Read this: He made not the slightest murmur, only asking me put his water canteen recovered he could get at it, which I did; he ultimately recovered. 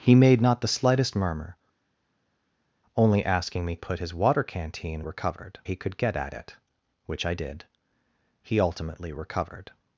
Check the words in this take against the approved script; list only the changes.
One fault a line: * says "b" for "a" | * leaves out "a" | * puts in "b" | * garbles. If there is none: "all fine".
all fine